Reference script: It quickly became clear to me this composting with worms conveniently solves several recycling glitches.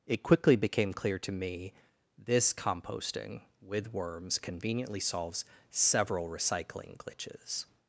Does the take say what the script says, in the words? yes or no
yes